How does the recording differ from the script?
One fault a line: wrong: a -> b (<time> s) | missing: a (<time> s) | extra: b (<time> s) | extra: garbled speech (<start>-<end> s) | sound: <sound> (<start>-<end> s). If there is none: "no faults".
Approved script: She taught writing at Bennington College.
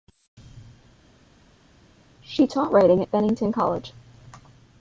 no faults